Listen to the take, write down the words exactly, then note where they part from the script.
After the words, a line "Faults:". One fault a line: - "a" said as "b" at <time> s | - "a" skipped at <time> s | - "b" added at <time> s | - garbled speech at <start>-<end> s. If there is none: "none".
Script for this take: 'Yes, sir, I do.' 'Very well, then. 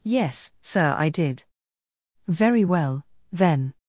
'Yes, sir, I did.' 'Very well, then.
Faults:
- "do" said as "did" at 1.1 s